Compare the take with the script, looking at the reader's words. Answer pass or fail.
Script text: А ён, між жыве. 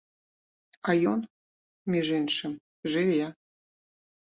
fail